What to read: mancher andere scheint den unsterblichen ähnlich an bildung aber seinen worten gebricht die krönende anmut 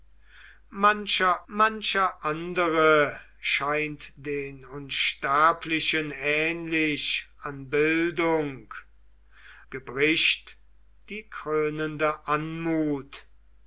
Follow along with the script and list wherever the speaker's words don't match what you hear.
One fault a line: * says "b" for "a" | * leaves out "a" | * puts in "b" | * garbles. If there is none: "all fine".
* puts in "mancher"
* leaves out "aber seinen worten"